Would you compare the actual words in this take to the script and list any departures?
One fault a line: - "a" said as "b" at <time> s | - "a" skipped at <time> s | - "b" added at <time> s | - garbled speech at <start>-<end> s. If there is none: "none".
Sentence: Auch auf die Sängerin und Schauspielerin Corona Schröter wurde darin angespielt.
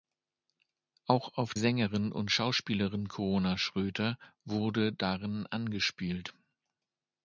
- "die" skipped at 1.5 s